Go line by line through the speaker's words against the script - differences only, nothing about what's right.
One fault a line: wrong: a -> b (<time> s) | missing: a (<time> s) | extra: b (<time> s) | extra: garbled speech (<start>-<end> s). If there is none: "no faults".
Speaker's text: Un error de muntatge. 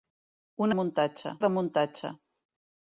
wrong: error -> muntatge (0.8 s)